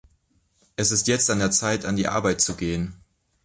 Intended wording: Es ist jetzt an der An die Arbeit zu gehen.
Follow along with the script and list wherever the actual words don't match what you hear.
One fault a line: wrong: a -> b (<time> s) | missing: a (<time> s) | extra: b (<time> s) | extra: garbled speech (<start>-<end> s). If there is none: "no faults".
extra: Zeit (1.5 s)